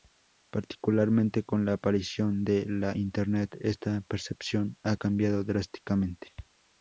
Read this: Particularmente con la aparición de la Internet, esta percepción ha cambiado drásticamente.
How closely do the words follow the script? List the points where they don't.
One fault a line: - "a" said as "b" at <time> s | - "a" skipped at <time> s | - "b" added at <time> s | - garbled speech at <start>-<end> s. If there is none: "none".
none